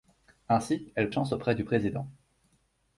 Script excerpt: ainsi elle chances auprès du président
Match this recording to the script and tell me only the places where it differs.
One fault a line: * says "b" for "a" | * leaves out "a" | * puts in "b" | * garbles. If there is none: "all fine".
all fine